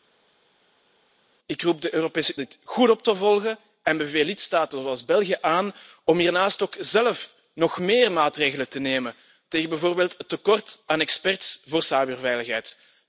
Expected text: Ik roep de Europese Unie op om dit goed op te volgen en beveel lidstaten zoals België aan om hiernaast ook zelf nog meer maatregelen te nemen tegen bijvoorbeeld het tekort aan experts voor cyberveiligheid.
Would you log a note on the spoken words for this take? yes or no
yes